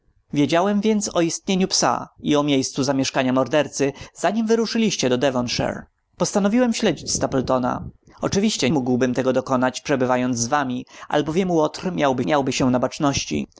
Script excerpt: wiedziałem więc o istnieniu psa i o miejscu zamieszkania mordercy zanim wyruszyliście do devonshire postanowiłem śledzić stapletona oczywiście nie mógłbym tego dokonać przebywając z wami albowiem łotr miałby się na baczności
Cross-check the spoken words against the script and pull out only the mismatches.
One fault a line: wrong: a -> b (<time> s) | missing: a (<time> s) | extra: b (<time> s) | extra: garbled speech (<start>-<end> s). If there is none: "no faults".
missing: nie (8.7 s)
extra: miałby (12.2 s)